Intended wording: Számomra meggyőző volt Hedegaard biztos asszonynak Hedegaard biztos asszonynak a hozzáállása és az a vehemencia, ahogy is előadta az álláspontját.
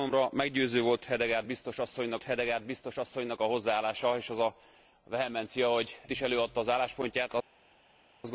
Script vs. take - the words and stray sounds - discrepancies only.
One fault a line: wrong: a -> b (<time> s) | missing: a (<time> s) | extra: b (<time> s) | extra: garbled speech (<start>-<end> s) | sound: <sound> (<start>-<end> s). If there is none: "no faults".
no faults